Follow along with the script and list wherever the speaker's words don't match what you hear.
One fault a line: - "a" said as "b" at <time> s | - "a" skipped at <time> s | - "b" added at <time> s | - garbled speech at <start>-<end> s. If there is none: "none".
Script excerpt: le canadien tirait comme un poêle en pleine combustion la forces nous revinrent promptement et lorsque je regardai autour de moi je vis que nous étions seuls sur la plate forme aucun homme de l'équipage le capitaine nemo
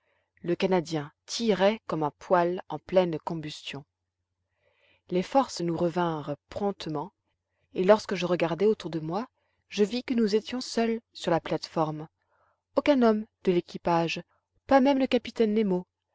- "la" said as "les" at 5.1 s
- "pas même" added at 14.7 s